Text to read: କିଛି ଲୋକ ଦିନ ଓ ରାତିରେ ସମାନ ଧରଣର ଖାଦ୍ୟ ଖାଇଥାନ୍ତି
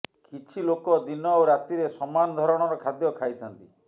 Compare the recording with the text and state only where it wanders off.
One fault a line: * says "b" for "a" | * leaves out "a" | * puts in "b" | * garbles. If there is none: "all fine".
all fine